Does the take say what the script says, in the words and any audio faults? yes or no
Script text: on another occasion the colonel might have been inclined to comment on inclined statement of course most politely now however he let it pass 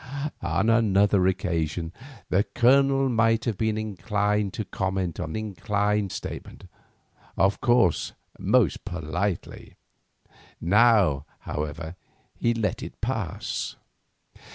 yes